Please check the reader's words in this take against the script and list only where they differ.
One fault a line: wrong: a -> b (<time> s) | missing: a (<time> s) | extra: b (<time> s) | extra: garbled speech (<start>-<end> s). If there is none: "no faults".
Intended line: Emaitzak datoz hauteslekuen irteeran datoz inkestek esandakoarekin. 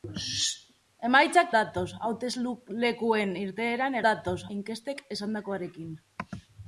no faults